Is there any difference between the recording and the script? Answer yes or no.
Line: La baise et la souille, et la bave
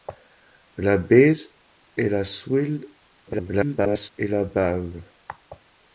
yes